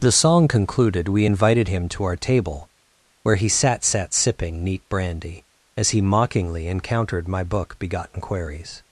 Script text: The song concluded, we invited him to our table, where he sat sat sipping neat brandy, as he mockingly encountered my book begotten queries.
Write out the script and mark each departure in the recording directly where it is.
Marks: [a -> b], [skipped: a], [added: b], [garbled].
The song concluded, we invited him to our table, where he sat sat sipping neat brandy, as he mockingly encountered my book begotten queries.